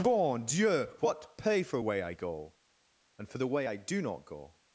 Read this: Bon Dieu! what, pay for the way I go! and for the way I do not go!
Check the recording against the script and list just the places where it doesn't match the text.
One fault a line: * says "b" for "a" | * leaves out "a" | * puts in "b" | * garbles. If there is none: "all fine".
* leaves out "the"